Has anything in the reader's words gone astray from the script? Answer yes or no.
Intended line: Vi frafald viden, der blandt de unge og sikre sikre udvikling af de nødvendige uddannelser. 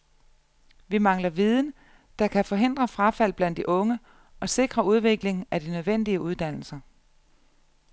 yes